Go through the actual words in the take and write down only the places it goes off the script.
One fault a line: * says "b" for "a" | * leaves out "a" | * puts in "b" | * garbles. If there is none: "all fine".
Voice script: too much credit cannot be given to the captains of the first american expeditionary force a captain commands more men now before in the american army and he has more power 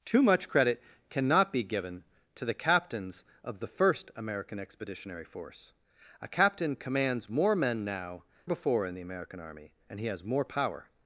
all fine